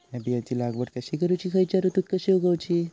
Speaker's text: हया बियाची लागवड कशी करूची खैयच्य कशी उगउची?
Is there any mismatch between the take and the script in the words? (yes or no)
yes